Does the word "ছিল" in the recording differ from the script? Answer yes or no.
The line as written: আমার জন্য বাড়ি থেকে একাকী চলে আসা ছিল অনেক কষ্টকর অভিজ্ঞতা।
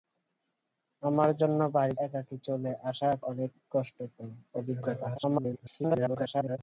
yes